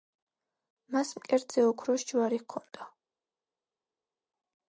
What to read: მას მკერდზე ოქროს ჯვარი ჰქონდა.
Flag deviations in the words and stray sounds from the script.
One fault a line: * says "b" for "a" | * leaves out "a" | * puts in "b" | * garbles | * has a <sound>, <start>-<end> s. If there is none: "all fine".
all fine